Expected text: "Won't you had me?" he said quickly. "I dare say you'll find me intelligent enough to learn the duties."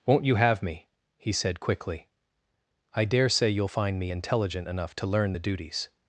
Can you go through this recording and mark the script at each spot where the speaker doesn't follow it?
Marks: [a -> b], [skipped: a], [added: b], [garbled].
"Won't you [had -> have] me?" he said quickly. "I dare say you'll find me intelligent enough to learn the duties."